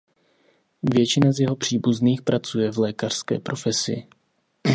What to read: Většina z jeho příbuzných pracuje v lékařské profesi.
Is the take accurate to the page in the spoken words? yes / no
yes